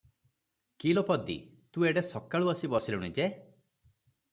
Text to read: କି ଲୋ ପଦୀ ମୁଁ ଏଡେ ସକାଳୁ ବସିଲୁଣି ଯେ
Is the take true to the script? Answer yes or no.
no